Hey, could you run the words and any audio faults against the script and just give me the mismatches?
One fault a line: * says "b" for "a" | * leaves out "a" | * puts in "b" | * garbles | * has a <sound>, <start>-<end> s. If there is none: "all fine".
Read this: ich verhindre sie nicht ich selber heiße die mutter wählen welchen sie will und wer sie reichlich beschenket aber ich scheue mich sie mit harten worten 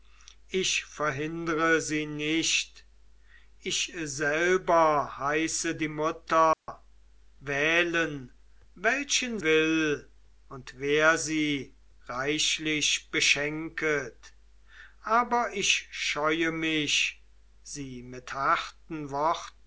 * has a dropout, 6.5-6.7 s
* leaves out "sie"